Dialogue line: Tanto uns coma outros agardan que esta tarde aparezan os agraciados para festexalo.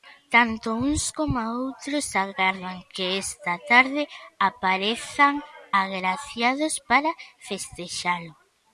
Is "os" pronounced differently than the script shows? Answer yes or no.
yes